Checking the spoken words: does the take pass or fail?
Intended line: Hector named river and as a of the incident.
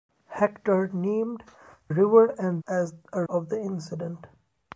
pass